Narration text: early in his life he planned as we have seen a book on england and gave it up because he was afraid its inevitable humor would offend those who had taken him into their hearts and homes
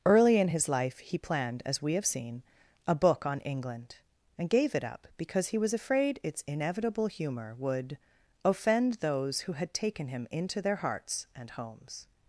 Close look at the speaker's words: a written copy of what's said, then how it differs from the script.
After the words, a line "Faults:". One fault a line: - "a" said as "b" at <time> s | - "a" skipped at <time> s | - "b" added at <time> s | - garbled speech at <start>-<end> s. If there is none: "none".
early in his life he planned as we have seen a book on england and gave it up because he was afraid its inevitable humor would offend those who had taken him into their hearts and homes
Faults:
none